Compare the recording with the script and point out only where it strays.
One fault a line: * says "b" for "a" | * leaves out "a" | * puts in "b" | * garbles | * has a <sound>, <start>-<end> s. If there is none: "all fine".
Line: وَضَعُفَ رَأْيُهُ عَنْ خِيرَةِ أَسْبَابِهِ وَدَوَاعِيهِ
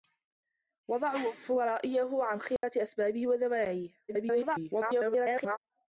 * has a dropout, 2.6-2.6 s
* garbles